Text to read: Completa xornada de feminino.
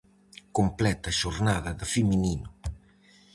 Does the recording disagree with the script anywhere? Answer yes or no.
no